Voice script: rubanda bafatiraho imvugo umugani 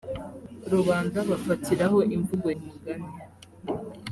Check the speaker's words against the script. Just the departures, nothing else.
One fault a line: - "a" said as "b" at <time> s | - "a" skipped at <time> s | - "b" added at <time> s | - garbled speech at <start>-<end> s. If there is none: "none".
none